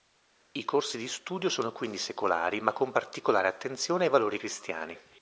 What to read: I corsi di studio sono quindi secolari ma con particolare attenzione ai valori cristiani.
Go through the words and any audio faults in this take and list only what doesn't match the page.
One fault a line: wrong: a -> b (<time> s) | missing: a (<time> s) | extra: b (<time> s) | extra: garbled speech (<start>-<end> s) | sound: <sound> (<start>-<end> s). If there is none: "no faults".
no faults